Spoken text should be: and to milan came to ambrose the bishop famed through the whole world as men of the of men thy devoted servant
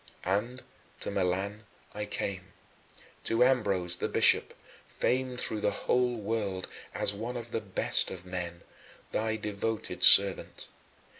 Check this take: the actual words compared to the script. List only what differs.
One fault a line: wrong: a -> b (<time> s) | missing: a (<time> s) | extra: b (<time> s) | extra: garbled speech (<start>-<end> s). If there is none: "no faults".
extra: i (1.9 s)
wrong: men -> one (7.1 s)
extra: best (7.6 s)